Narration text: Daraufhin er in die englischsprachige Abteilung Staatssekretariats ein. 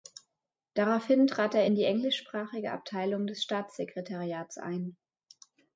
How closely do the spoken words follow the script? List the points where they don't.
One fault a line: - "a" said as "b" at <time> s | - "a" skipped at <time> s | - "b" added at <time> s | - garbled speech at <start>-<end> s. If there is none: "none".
- "trat" added at 1.3 s
- "des" added at 3.3 s